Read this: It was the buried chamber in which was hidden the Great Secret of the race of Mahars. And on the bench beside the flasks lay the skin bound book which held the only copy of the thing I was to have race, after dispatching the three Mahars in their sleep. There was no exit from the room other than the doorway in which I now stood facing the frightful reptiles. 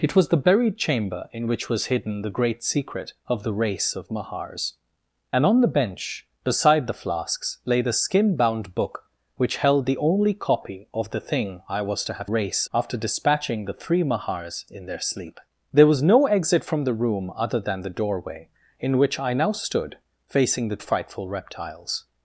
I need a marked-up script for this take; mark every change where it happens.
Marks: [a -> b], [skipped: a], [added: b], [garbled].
It was the buried chamber in which was hidden the Great Secret of the race of Mahars. And on the bench beside the flasks lay the skin bound book which held the only copy of the thing I was to have race, after dispatching the three Mahars in their sleep. There was no exit from the room other than the doorway in which I now stood facing the frightful reptiles.